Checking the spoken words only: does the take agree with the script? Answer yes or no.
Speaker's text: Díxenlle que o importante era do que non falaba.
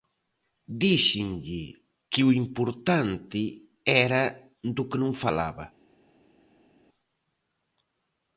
yes